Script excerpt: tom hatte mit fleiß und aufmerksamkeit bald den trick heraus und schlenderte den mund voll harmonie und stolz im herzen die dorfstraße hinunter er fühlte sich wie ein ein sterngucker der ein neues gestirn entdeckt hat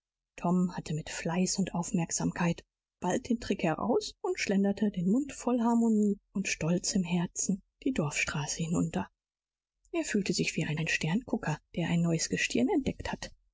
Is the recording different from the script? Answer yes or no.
no